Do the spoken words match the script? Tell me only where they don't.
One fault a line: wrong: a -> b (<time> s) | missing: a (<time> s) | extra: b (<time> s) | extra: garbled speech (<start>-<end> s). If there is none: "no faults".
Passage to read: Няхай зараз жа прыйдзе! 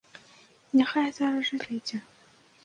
no faults